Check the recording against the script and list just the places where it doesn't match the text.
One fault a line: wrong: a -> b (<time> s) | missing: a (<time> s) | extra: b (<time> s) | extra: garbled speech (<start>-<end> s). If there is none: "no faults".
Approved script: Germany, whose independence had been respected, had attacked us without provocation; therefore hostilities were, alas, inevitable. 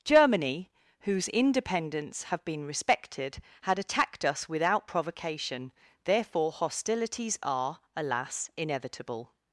wrong: had -> have (2.2 s)
wrong: were -> are (7.4 s)